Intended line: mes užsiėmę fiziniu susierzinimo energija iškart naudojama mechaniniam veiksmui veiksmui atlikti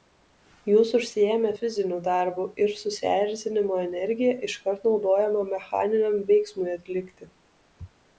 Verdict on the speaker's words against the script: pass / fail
fail